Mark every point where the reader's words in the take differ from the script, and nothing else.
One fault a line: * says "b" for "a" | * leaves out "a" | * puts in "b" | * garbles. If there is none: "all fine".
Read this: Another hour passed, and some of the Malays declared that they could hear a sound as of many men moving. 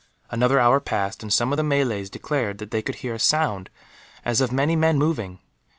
all fine